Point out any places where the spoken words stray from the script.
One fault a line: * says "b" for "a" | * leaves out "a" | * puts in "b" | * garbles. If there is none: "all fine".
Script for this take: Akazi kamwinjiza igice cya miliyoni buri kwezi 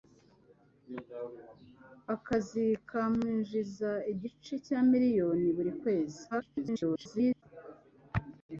* garbles